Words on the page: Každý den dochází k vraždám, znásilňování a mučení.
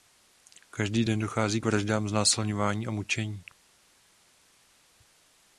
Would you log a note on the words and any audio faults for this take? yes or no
no